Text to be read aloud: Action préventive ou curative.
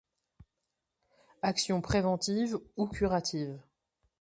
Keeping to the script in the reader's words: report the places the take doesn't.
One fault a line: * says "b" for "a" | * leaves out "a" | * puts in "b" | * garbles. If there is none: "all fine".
all fine